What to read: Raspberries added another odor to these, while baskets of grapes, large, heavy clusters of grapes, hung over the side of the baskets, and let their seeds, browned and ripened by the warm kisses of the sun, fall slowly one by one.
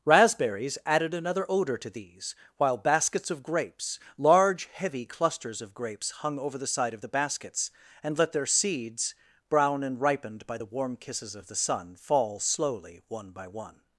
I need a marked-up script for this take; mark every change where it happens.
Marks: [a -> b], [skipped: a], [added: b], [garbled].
Raspberries added another odor to these, while baskets of grapes, large, heavy clusters of grapes, hung over the side of the baskets, and let their seeds, [browned -> brown] and ripened by the warm kisses of the sun, fall slowly one by one.